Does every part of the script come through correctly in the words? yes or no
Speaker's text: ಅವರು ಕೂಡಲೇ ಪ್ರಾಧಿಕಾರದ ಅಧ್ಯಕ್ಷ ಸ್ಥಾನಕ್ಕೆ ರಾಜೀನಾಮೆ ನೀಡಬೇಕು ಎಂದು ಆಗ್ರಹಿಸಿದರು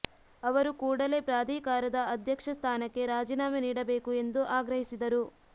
yes